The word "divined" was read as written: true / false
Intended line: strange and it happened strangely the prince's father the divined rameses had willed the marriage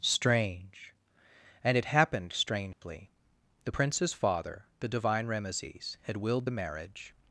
false